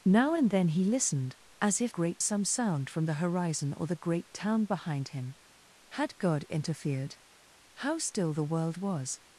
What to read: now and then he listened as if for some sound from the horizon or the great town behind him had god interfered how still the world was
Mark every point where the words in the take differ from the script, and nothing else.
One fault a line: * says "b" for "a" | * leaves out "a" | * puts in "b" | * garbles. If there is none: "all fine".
* says "great" for "for"